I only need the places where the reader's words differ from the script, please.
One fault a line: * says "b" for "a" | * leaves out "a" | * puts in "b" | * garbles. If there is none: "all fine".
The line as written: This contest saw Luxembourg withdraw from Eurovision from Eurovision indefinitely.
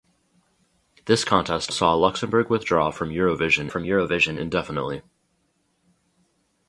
all fine